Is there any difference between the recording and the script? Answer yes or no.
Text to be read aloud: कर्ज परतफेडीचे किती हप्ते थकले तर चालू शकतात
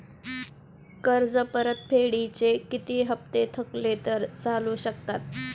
no